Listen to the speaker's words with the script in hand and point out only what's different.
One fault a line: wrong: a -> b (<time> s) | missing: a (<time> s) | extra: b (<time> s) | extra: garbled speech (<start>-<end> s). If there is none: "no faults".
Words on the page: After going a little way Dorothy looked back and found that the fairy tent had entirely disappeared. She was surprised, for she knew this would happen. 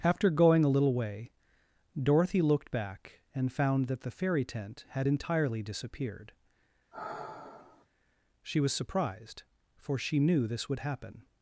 no faults